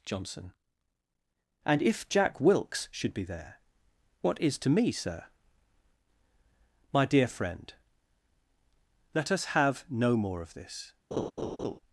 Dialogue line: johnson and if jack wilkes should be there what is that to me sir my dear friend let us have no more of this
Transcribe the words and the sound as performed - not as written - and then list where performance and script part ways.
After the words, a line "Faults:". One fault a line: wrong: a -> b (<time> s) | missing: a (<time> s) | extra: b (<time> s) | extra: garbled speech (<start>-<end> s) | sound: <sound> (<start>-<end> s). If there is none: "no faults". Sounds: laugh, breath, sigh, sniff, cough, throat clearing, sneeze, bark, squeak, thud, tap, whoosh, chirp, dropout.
johnson and if jack wilkes should be there what is to me sir my dear friend let us have no more of this
Faults:
missing: that (4.6 s)
sound: laugh (11.1-11.8 s)